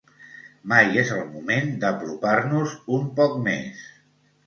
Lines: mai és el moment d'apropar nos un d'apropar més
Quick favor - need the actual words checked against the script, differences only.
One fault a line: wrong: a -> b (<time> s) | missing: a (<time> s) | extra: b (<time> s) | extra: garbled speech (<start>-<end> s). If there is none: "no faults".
wrong: d'apropar -> poc (3.2 s)